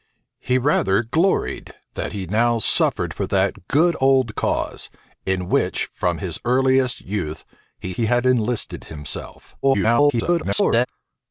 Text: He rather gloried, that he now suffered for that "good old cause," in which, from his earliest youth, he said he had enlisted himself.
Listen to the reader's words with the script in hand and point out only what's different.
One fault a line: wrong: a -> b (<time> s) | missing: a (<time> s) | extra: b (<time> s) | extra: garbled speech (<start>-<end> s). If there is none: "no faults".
missing: said (7.9 s)
extra: garbled speech (9.6-10.9 s)